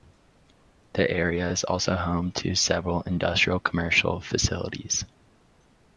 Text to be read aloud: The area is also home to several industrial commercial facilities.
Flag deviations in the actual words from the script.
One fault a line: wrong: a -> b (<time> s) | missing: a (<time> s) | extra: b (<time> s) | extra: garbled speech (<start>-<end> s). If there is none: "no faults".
no faults